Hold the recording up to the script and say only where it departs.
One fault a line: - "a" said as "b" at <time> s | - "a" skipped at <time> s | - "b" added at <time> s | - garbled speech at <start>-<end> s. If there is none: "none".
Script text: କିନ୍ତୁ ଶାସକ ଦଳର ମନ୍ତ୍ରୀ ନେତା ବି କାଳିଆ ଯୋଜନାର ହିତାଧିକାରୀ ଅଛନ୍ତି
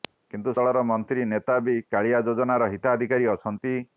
- "ଶାସକ" skipped at 0.5 s